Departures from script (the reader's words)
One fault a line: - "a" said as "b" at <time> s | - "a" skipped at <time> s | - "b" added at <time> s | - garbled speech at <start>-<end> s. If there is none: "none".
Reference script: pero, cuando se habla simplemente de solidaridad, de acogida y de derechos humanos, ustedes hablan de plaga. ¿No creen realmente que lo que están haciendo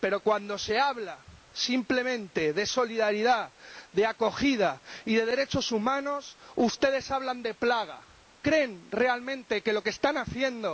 - "No" skipped at 8.1 s